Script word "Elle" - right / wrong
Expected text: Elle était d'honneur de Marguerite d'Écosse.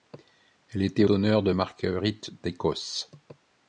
right